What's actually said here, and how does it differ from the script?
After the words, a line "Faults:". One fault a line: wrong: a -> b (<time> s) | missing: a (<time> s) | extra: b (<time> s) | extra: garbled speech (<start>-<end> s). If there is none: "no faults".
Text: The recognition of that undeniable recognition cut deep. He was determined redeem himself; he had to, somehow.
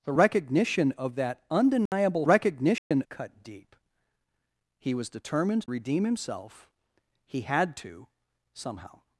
The recognition of that undeniable recognition cut deep. He was determined redeem himself; he had to, somehow.
Faults:
no faults